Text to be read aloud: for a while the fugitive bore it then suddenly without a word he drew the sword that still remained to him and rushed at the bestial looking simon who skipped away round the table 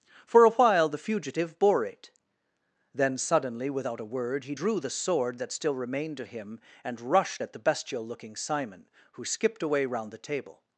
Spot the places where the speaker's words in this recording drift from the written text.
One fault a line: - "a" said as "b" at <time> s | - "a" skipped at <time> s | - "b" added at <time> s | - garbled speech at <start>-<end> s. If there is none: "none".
none